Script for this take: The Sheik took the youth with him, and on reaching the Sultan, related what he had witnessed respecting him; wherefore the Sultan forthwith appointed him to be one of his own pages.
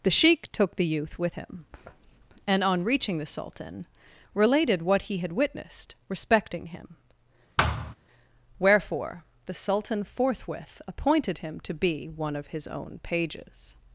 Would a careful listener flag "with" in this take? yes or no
no